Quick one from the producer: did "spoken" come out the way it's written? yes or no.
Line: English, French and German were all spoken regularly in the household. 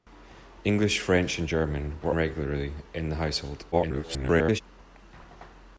no